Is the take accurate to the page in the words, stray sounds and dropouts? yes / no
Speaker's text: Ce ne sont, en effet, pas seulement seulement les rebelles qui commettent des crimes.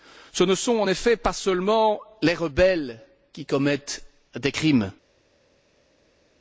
no